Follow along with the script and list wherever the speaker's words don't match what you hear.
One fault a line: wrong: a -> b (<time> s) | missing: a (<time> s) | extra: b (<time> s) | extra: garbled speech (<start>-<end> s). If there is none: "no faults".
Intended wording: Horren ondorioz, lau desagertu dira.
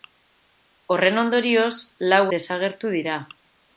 no faults